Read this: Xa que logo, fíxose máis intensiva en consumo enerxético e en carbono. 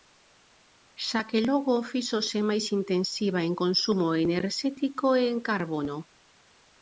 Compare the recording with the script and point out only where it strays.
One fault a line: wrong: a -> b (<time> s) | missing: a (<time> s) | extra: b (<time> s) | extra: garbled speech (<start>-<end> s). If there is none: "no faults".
no faults